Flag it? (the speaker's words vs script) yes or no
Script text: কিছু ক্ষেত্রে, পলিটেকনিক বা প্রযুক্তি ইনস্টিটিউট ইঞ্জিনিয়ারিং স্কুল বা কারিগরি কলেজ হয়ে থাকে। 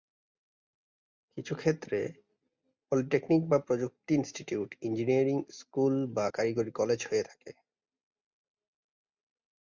no